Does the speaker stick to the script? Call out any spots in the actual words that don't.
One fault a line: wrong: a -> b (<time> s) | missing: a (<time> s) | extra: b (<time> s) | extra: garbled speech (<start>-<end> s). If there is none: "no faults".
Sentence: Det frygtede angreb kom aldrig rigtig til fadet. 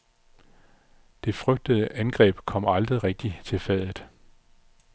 no faults